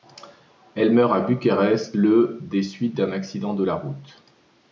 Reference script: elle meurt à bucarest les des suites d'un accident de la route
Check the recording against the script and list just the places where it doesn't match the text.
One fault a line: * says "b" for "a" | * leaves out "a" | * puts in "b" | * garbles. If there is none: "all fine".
* says "le" for "les"